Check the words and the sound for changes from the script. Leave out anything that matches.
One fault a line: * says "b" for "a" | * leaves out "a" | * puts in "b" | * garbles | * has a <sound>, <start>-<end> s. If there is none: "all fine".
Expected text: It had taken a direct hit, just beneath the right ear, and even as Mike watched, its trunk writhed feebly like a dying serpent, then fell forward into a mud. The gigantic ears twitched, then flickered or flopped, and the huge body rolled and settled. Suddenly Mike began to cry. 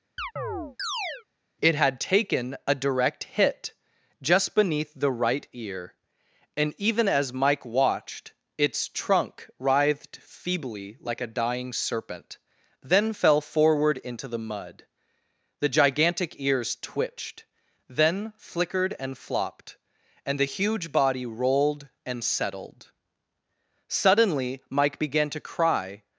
* has a chirp, 0.2-1.2 s
* says "the" for "a"
* says "and" for "or"